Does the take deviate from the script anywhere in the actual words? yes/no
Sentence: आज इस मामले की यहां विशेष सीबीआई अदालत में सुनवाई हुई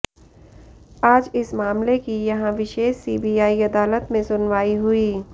no